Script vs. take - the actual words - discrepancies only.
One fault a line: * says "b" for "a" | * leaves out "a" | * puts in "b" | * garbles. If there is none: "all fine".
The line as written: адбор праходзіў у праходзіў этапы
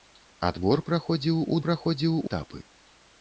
all fine